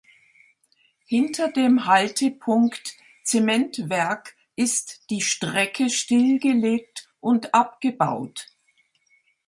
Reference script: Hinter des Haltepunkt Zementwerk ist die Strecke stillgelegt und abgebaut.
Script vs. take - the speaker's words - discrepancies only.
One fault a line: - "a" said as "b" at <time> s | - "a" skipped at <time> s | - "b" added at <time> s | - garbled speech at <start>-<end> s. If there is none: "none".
- "des" said as "dem" at 1.5 s